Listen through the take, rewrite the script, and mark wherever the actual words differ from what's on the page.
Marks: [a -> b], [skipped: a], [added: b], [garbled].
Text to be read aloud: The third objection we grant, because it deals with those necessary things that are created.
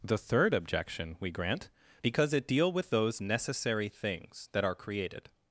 The third objection we grant, because it [deals -> deal] with those necessary things that are created.